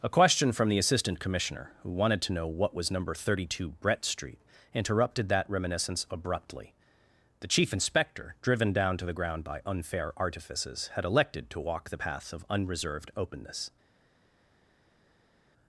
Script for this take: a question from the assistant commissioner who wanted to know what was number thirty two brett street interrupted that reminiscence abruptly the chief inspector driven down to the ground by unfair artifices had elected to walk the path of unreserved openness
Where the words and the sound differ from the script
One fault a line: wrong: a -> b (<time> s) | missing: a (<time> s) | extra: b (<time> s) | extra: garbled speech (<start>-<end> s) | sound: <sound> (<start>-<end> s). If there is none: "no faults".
no faults